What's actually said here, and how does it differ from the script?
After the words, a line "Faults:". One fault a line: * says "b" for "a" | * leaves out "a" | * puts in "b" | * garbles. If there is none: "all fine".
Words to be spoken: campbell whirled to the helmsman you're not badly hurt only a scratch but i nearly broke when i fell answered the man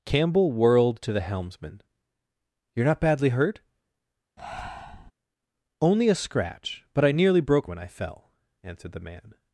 campbell whirled to the helmsman you're not badly hurt only a scratch but i nearly broke when i fell answered the man
Faults:
all fine